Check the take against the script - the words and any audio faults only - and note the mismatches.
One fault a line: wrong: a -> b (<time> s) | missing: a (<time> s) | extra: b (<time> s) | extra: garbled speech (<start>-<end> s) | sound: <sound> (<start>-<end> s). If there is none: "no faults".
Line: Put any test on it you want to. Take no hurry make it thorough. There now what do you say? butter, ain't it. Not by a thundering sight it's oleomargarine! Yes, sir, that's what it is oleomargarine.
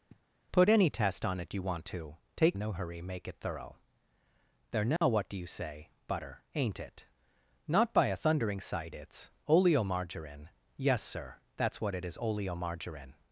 sound: sniff (0.1-0.2 s)
sound: dropout (5.0-5.0 s)